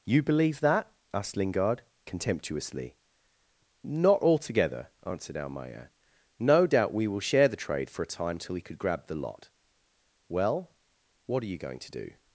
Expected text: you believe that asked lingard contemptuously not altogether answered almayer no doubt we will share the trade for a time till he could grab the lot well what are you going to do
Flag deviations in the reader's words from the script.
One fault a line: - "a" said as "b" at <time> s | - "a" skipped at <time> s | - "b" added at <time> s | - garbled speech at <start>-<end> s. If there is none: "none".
none